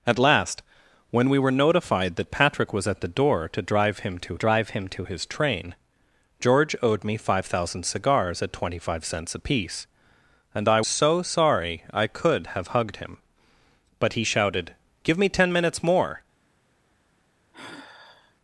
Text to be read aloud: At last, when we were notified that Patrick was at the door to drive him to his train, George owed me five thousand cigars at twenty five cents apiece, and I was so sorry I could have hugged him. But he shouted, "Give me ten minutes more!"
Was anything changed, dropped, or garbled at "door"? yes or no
no